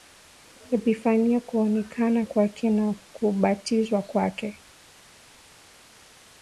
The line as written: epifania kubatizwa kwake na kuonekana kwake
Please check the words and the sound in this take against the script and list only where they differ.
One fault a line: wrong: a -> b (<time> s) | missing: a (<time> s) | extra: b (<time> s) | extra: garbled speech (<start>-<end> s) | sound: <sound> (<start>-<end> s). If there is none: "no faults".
wrong: kubatizwa -> kuonekana (1.4 s)
wrong: kuonekana -> kubatizwa (2.9 s)